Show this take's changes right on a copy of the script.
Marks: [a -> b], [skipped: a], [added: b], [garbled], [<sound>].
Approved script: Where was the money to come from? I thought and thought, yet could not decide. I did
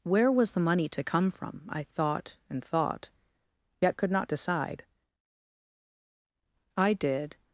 Where was the money to come from? I thought and thought, yet could not decide. I did